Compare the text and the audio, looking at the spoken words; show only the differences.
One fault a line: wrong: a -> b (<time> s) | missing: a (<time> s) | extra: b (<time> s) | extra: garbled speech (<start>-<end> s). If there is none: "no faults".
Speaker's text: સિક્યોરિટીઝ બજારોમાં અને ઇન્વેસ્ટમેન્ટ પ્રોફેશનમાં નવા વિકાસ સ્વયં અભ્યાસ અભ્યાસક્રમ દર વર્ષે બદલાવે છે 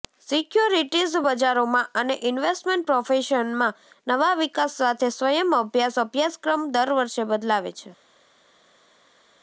extra: સાથે (4.8 s)